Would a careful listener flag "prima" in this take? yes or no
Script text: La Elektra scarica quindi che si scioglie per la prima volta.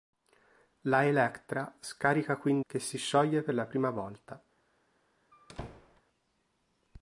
no